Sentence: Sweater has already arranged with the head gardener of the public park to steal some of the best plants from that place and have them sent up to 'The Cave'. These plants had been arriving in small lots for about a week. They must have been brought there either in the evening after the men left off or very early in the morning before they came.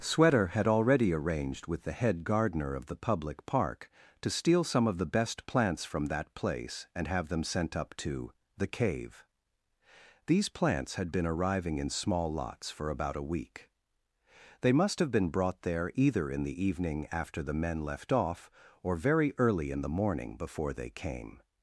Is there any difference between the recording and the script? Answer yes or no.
yes